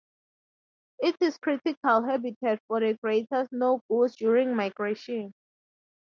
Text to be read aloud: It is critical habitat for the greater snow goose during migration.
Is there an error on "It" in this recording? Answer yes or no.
no